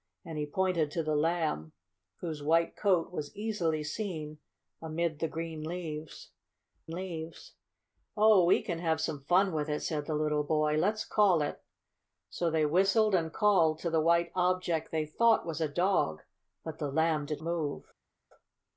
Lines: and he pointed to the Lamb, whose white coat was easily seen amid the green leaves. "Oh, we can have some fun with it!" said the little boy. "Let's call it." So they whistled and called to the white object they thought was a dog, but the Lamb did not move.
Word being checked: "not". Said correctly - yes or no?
no